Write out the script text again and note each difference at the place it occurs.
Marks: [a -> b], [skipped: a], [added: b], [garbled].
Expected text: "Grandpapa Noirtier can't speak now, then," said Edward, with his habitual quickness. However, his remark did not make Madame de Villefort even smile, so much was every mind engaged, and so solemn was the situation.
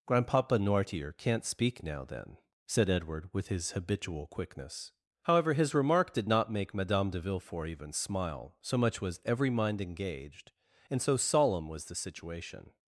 "Grandpapa Noirtier can't speak now, then," said Edward, with his habitual quickness. However, his remark did not make Madame de Villefort even smile, so much was every mind engaged, and so solemn was the situation.